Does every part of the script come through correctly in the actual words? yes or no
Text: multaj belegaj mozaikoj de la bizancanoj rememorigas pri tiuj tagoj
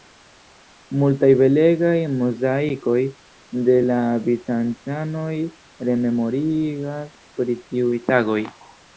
yes